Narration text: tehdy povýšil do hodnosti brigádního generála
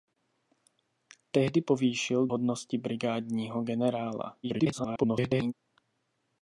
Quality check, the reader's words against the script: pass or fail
fail